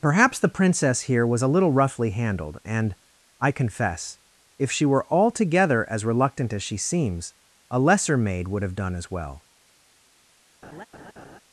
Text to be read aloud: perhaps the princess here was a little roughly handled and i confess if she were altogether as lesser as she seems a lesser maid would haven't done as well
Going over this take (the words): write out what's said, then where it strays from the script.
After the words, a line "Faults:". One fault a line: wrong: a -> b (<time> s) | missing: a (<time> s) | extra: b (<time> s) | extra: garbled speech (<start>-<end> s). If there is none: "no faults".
perhaps the princess here was a little roughly handled and i confess if she were altogether as reluctant as she seems a lesser maid would have done as well
Faults:
wrong: lesser -> reluctant (6.0 s)
wrong: haven't -> have (8.6 s)